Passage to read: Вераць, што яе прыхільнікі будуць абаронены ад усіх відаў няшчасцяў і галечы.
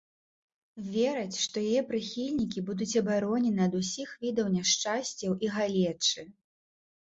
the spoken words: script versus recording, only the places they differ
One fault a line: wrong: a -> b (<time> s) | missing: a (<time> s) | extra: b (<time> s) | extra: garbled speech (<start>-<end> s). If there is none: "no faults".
no faults